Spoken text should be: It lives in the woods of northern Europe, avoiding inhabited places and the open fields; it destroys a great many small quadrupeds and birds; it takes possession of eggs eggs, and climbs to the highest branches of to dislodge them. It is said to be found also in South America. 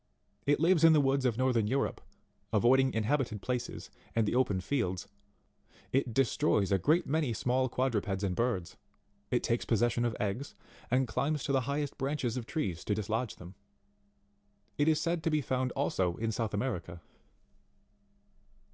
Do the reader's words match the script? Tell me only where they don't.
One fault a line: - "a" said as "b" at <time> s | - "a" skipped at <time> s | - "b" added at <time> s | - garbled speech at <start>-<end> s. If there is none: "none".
- "eggs" skipped at 10.5 s
- "trees" added at 12.5 s